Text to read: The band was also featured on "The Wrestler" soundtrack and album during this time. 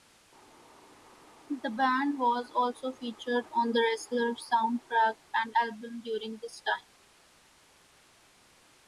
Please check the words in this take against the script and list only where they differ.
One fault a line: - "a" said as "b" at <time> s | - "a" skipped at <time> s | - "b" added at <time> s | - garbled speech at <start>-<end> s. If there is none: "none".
none